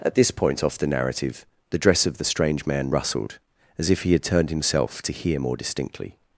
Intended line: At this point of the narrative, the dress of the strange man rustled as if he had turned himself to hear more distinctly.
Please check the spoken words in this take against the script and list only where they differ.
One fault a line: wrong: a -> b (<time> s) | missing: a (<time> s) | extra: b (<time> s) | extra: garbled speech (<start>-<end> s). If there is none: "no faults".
wrong: of -> off (0.6 s)